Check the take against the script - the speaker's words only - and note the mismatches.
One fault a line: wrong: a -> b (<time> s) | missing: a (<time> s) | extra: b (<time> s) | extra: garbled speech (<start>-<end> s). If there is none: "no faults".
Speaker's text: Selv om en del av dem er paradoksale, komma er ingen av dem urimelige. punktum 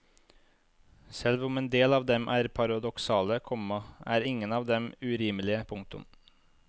no faults